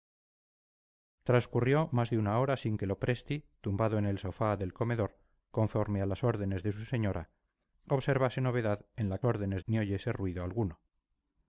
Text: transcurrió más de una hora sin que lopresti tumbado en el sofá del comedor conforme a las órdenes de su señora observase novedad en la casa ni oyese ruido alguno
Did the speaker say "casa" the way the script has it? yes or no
no